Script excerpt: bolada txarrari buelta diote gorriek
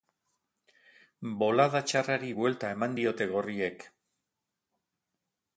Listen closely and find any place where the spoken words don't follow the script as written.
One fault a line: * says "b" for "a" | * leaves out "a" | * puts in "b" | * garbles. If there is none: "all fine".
* puts in "eman"